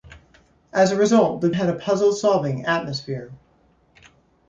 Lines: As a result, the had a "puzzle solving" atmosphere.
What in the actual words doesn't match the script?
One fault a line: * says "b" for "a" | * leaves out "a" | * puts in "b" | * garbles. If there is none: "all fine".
all fine